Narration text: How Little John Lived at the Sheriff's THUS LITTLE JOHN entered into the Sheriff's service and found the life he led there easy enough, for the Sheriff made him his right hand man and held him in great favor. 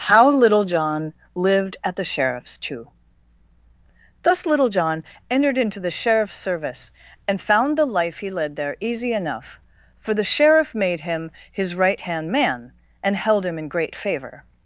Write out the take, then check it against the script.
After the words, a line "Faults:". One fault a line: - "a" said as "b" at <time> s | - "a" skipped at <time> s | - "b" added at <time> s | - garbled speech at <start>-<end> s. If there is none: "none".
How Little John Lived at the Sheriff's too THUS LITTLE JOHN entered into the Sheriff's service and found the life he led there easy enough, for the Sheriff made him his right hand man and held him in great favor.
Faults:
- "too" added at 2.6 s